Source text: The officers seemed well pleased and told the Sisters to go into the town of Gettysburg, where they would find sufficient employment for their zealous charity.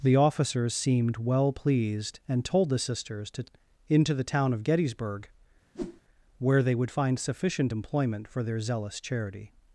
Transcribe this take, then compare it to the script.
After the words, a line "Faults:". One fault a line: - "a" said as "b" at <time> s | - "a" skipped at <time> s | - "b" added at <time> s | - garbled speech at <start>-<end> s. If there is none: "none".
The officers seemed well pleased and told the Sisters to into the town of Gettysburg, where they would find sufficient employment for their zealous charity.
Faults:
- "go" skipped at 3.5 s